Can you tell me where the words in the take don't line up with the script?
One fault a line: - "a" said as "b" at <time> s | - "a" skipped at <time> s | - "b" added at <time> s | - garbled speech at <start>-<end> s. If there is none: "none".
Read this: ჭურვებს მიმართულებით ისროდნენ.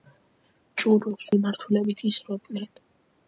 none